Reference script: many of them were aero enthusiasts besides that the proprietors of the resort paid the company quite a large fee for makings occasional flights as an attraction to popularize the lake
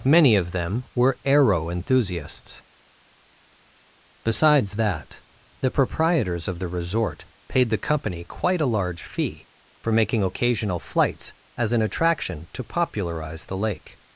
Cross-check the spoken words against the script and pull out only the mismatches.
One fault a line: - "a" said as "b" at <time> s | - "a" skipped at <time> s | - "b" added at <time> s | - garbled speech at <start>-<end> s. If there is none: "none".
- "makings" said as "making" at 9.9 s